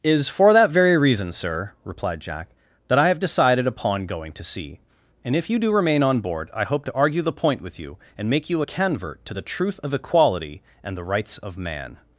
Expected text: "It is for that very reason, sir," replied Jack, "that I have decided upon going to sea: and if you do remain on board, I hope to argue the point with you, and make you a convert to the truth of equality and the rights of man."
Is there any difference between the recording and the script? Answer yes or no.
yes